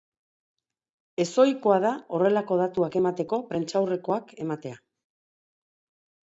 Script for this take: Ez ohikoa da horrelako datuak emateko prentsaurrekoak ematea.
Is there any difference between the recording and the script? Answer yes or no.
no